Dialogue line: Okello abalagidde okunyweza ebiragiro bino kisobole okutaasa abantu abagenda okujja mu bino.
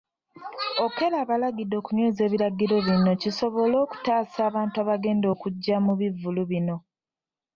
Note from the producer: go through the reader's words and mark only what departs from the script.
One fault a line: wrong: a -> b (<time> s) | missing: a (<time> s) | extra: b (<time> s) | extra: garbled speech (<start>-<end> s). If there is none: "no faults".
extra: bivvulu (6.0 s)